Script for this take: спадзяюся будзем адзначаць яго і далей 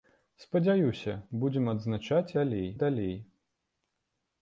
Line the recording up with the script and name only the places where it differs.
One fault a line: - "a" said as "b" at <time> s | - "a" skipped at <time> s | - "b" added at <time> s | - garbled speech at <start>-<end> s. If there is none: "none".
- "яго" said as "далей" at 2.4 s